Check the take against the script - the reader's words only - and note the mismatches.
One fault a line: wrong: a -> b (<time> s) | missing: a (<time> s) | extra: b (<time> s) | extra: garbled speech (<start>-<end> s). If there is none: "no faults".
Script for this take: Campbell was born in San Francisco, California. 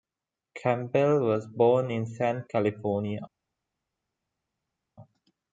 missing: Francisco (2.4 s)